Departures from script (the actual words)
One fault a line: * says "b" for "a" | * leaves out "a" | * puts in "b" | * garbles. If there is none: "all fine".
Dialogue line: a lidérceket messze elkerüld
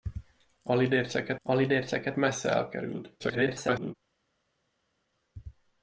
* puts in "a lidérceket"
* garbles